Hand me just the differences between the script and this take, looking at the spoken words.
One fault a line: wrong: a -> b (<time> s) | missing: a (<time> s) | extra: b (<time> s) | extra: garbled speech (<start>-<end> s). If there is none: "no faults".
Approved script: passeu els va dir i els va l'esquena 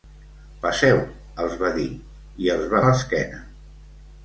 no faults